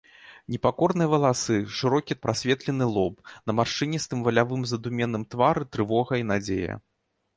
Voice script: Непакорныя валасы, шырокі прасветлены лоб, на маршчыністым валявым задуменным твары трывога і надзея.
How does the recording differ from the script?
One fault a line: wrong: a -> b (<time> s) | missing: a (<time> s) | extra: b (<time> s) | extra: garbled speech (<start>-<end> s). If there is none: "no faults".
no faults